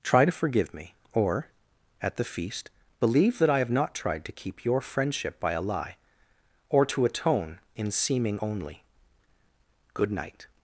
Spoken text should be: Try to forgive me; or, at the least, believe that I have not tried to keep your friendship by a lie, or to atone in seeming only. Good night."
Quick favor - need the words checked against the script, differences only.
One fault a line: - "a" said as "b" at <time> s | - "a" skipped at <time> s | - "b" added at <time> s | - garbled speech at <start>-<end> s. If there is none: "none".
- "least" said as "feast" at 2.2 s